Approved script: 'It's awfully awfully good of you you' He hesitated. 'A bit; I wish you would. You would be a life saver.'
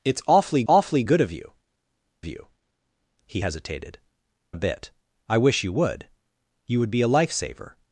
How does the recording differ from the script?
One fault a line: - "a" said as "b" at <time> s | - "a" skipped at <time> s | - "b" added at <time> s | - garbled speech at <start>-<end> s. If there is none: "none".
none